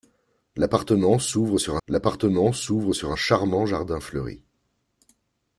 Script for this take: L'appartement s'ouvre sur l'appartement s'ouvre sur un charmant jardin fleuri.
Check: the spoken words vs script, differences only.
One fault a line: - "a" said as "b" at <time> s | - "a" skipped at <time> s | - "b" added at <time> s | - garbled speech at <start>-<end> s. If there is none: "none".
none